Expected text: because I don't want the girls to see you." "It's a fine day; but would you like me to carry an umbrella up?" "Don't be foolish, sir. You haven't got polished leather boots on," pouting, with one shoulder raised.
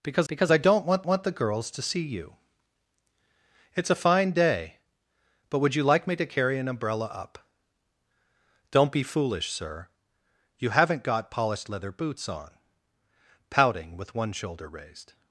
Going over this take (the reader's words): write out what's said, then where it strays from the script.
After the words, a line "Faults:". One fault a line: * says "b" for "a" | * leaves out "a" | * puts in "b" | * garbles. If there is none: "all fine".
because because I don't want want the girls to see you." "It's a fine day; but would you like me to carry an umbrella up?" "Don't be foolish, sir. You haven't got polished leather boots on," pouting, with one shoulder raised.
Faults:
* puts in "because"
* puts in "want"